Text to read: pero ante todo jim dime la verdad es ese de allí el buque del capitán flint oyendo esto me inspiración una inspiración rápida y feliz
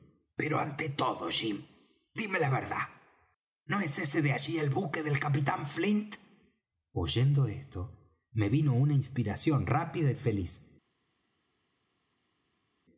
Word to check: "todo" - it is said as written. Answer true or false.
true